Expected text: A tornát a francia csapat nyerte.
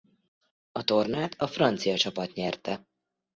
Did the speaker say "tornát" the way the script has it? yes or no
yes